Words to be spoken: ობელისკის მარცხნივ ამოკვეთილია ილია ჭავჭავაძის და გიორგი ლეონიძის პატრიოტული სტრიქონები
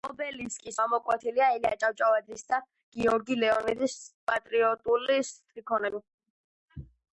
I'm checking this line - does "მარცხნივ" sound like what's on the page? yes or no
no